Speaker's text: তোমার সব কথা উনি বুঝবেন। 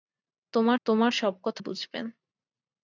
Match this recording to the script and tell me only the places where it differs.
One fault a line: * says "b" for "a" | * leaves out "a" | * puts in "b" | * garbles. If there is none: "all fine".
* puts in "তোমার"
* leaves out "উনি"